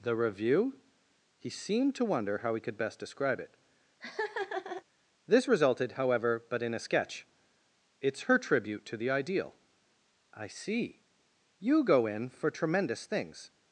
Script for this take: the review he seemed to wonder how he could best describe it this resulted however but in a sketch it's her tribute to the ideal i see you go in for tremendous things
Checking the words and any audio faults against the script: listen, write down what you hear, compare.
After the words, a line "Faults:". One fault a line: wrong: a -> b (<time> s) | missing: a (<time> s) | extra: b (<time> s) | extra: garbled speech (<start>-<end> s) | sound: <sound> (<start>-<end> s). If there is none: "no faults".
the review he seemed to wonder how he could best describe it this resulted however but in a sketch it's her tribute to the ideal i see you go in for tremendous things
Faults:
sound: laugh (4.0-4.8 s)